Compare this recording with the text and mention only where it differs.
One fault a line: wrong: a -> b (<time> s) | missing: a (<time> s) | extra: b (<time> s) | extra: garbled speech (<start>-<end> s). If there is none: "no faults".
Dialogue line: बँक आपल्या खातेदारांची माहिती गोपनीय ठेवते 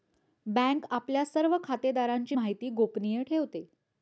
extra: सर्व (1.2 s)